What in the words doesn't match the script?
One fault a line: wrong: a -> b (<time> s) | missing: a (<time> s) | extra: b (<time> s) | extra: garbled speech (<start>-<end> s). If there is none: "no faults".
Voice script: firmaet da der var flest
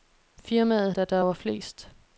no faults